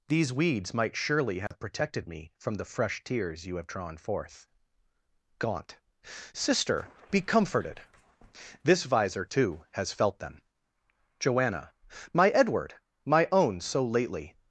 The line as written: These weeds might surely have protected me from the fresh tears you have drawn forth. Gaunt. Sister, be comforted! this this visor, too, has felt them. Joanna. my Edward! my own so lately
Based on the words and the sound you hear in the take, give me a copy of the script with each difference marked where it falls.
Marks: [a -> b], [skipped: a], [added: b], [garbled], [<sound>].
These weeds might surely have [dropout] protected me from the fresh tears you have drawn forth. Gaunt. Sister, be comforted! this [skipped: this] visor, too, has felt them. Joanna. my Edward! my own so lately